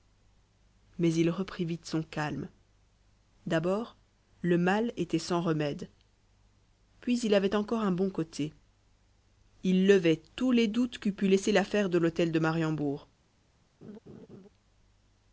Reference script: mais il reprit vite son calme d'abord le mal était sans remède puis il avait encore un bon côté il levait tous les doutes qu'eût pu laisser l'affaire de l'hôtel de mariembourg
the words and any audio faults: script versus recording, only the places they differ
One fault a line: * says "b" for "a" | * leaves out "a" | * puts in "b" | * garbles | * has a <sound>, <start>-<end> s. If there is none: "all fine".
* has a laugh, 13.8-14.5 s